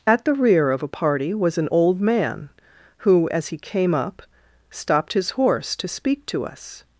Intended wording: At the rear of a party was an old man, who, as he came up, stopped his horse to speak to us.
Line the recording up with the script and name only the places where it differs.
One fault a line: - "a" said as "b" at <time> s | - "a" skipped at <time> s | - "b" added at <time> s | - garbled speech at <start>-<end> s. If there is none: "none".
none